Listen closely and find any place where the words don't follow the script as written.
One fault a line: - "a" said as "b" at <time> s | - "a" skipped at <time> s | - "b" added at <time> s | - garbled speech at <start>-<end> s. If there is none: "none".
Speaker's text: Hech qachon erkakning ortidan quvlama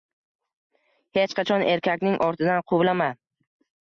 none